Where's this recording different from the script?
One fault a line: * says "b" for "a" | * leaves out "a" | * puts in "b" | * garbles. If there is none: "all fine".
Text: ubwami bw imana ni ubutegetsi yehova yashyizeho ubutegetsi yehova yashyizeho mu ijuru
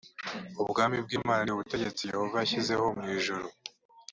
* leaves out "ubutegetsi yehova yashyizeho"